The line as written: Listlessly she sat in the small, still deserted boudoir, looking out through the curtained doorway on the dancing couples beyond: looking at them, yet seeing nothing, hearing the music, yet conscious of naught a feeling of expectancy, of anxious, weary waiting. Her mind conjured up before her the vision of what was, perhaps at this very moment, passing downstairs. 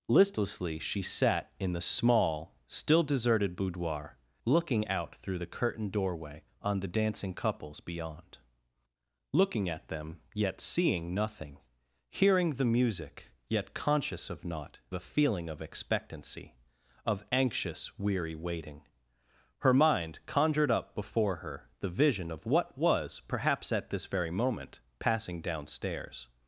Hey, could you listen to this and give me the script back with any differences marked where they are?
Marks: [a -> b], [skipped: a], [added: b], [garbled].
Listlessly she sat in the small, still deserted boudoir, looking out through the curtained doorway on the dancing couples beyond: looking at them, yet seeing nothing, hearing the music, yet conscious of naught a feeling of expectancy, of anxious, weary waiting. Her mind conjured up before her the vision of what was, perhaps at this very moment, passing downstairs.